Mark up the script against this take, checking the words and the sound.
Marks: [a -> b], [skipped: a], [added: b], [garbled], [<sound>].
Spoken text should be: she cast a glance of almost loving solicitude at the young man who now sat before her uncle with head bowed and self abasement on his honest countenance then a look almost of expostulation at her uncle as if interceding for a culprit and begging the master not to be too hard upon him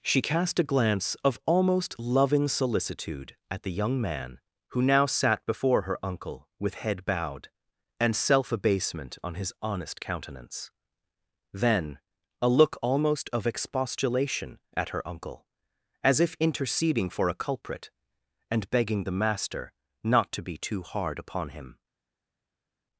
she cast a glance of almost loving solicitude at the young man who now sat before her uncle with head bowed and self abasement on his honest countenance then a look almost of expostulation at her uncle as if interceding for a culprit and begging the master not to be too hard upon him